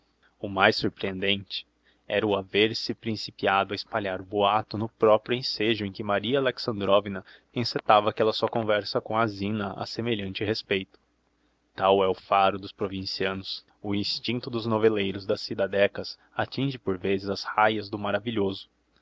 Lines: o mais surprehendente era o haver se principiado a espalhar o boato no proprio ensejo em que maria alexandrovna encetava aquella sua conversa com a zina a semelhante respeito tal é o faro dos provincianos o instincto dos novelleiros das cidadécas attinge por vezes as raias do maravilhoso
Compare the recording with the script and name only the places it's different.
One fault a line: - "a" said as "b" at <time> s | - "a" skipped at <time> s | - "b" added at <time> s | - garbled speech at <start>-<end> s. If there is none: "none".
none